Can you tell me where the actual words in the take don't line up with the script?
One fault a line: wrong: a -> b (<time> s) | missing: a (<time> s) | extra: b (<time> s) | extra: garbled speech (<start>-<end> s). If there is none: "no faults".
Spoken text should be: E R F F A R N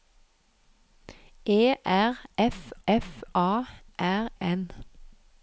no faults